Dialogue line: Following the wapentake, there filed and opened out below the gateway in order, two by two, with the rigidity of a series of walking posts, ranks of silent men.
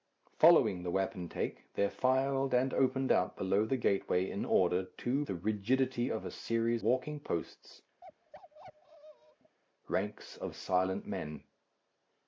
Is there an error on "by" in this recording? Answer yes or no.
yes